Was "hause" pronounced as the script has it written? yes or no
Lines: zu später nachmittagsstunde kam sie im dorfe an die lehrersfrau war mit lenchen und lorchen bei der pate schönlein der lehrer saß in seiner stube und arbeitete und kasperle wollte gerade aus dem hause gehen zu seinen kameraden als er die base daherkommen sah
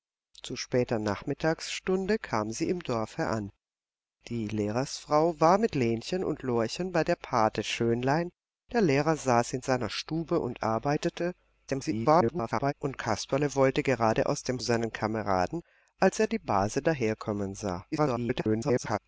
no